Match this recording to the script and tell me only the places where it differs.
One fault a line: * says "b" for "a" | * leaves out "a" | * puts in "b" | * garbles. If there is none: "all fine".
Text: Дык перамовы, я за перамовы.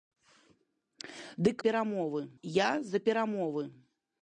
all fine